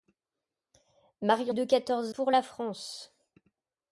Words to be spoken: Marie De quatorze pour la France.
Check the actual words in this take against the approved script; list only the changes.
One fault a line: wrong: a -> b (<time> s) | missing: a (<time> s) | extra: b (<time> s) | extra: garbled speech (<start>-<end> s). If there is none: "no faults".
no faults